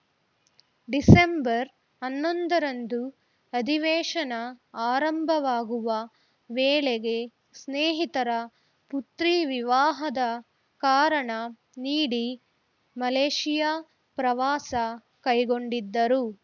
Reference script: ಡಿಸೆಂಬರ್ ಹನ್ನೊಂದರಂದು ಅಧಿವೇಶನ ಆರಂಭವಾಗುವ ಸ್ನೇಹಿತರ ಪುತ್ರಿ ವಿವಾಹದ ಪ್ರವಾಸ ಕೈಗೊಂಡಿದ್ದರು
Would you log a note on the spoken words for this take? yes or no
yes